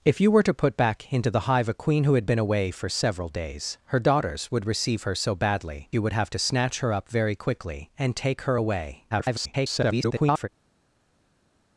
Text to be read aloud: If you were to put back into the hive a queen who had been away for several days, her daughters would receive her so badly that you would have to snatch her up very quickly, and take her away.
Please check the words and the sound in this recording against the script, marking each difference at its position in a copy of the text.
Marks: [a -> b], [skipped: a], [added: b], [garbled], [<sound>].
If you were to put back into the hive a queen who had been away for several days, her daughters would receive her so badly [skipped: that] you would have to snatch her up very quickly, and take her away. [garbled]